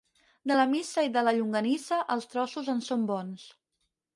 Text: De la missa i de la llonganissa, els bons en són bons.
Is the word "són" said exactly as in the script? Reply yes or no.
yes